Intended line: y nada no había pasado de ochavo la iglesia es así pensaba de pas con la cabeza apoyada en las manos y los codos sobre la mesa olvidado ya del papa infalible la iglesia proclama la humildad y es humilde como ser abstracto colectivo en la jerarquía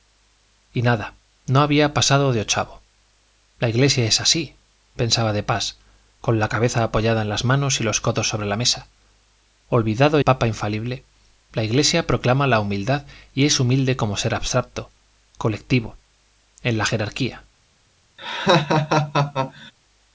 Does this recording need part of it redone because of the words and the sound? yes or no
yes